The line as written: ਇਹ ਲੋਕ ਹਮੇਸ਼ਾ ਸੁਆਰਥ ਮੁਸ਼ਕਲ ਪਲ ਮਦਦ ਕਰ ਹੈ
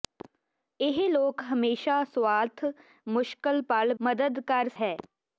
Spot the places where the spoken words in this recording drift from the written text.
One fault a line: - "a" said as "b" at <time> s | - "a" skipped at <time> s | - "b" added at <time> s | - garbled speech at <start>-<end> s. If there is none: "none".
none